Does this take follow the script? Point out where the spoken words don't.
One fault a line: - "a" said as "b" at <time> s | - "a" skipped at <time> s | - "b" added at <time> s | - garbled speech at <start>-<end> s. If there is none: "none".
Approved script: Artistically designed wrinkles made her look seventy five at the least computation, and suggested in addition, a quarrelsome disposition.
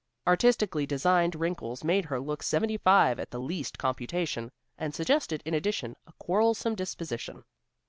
none